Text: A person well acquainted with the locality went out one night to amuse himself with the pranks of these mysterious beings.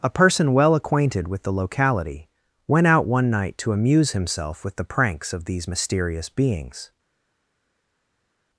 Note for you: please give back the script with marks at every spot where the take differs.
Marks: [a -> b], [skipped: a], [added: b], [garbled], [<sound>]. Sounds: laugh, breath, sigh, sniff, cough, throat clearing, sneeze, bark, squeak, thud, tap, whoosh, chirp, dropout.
A person well acquainted with the locality went out one night to amuse himself with the pranks of these mysterious beings.